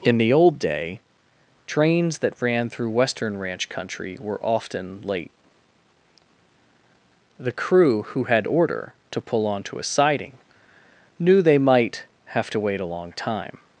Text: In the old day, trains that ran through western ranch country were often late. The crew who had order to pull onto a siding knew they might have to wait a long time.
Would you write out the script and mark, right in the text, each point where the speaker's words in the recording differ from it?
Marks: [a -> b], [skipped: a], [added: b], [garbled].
In the old day, trains that ran through western ranch country were often late. The crew who had order to pull onto a siding knew they might have to wait a long time.